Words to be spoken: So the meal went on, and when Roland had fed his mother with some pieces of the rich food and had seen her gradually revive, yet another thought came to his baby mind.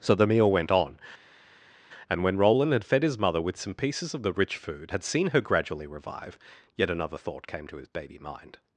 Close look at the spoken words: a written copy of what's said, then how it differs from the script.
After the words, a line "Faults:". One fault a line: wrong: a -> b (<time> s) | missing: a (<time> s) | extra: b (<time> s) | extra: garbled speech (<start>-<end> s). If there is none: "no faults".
So the meal went on, and when Roland had fed his mother with some pieces of the rich food had seen her gradually revive, yet another thought came to his baby mind.
Faults:
missing: and (4.9 s)